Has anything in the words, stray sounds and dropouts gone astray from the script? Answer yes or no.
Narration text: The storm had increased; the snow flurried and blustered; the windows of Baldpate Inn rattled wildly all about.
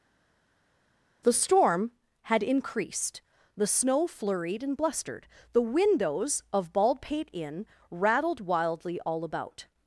no